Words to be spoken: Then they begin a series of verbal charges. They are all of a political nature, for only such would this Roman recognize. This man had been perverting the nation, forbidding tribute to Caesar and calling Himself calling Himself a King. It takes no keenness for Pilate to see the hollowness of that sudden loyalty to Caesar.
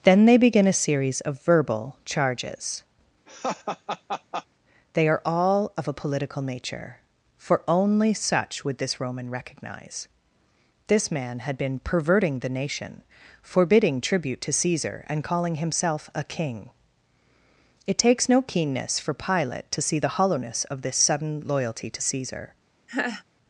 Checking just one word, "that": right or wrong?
wrong